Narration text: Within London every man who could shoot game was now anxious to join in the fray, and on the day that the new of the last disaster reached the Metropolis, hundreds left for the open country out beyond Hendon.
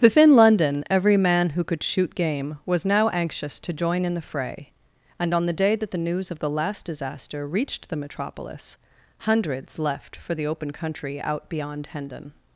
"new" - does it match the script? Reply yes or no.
no